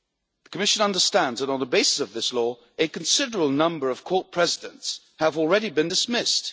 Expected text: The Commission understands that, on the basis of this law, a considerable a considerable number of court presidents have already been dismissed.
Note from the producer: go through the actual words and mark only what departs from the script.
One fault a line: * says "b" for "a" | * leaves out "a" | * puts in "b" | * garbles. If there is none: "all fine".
* leaves out "a considerable"